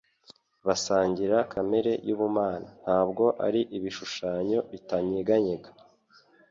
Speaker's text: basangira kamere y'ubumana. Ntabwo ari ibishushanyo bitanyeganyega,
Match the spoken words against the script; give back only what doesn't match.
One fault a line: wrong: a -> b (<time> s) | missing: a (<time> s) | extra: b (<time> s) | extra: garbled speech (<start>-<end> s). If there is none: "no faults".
no faults